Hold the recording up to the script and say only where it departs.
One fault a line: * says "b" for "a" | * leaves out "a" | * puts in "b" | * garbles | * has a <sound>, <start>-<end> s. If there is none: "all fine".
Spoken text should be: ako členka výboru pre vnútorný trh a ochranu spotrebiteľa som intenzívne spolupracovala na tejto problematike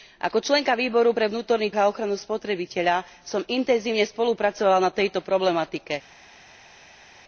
* leaves out "trh"